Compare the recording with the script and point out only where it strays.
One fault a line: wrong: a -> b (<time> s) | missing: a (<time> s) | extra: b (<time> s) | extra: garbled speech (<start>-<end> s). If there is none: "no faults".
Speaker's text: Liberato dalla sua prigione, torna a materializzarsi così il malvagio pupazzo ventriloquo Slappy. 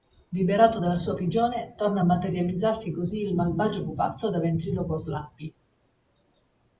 extra: da (4.3 s)